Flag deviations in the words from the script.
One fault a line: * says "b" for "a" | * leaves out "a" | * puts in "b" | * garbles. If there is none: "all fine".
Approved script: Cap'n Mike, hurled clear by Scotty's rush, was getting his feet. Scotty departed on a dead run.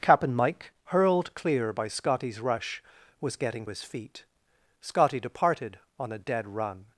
all fine